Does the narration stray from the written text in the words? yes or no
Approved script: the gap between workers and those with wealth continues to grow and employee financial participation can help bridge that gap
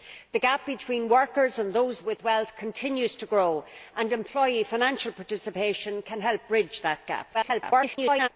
yes